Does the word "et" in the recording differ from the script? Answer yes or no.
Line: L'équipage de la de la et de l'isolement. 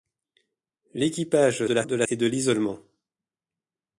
no